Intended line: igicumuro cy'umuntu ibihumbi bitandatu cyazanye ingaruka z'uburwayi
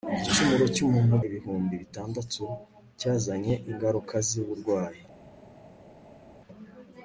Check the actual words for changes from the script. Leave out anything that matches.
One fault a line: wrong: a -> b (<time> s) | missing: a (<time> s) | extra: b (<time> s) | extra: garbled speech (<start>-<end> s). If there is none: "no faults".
no faults